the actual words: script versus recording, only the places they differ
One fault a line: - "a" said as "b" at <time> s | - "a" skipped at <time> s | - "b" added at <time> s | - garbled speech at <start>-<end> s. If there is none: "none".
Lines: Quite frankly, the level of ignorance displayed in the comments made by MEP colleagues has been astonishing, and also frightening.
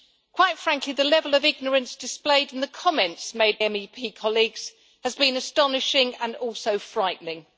- "by" skipped at 3.6 s